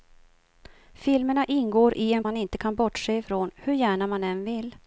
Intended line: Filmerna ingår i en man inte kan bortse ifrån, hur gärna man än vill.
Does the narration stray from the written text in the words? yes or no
no